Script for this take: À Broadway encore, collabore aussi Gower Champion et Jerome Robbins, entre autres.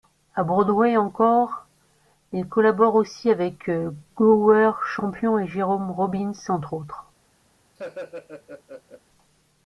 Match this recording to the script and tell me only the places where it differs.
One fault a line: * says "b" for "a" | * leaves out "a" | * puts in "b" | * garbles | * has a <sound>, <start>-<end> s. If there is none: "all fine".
* puts in "il"
* puts in "avec"
* has a laugh, 7.8-9.0 s